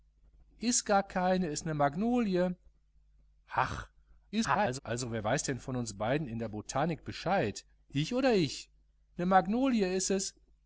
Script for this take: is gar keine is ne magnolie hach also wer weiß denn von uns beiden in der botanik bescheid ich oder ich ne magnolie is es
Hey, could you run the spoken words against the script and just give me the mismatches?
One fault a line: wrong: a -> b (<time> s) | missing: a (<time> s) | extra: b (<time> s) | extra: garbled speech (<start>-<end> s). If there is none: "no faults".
extra: garbled speech (4.3-4.8 s)